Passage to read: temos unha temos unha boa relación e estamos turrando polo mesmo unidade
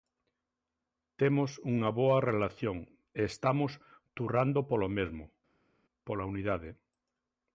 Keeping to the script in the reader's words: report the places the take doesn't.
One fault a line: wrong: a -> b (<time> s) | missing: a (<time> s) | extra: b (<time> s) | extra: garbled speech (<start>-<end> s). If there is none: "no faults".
missing: temos unha (1.9 s)
extra: pola (6.1 s)